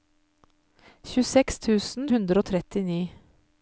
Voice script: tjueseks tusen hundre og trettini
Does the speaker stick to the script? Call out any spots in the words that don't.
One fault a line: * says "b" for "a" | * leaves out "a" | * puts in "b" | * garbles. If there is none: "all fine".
all fine